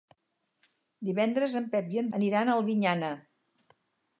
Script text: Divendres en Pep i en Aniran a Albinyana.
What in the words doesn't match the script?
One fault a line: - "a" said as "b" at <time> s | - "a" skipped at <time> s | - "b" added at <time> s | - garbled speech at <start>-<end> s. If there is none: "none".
none